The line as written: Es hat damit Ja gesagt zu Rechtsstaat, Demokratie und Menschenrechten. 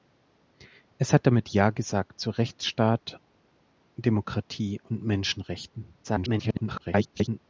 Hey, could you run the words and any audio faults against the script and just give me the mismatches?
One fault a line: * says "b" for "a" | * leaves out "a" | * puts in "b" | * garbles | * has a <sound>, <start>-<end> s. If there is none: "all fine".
* garbles